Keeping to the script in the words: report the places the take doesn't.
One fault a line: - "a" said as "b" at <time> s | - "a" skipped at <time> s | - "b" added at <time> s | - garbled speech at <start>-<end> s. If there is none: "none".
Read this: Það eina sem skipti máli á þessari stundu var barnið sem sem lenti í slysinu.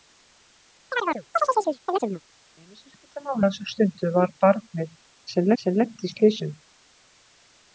none